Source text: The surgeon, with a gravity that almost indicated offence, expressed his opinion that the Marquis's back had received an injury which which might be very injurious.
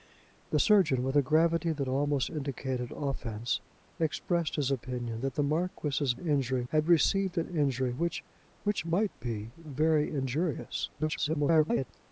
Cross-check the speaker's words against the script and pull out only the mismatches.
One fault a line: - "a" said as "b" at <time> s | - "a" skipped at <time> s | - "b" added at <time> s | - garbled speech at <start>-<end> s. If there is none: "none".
- "back" said as "injury" at 6.2 s
- garbled speech at 11.0-11.9 s